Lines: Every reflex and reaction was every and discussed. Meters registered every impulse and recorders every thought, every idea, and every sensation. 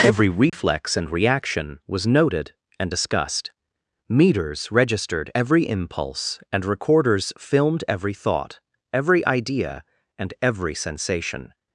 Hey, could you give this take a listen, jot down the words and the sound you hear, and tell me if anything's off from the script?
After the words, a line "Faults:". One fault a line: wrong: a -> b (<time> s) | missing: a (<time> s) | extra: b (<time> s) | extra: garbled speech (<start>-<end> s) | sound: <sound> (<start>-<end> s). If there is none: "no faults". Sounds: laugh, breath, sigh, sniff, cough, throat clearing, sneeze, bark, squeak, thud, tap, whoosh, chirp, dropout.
Every reflex and reaction was noted and discussed. Meters registered every impulse and recorders filmed every thought, every idea, and every sensation.
Faults:
sound: dropout (0.5-0.5 s)
wrong: every -> noted (2.1 s)
extra: filmed (7.4 s)